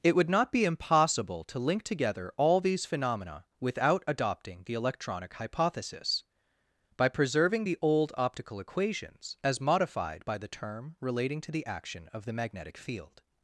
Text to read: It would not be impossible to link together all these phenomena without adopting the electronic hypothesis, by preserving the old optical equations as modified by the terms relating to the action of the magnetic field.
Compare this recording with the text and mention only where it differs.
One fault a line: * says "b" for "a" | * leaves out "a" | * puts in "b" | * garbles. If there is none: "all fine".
* says "term" for "terms"